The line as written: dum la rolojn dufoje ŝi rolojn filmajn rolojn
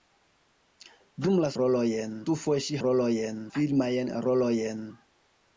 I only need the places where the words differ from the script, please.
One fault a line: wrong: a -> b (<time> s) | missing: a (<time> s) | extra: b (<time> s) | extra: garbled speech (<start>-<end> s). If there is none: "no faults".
no faults